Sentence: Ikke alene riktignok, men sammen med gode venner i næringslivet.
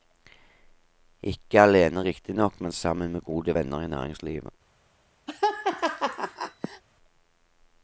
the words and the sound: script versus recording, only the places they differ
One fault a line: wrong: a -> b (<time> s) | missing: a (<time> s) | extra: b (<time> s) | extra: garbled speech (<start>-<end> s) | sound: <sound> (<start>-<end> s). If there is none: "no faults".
sound: laugh (5.3-6.8 s)